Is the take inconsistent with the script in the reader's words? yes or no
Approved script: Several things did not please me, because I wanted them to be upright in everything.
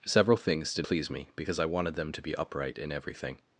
yes